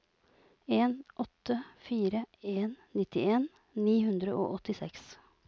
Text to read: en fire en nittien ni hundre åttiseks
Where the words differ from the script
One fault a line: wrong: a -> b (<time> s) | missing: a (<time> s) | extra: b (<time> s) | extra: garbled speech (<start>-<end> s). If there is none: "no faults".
extra: åtte (1.2 s)
extra: og (4.4 s)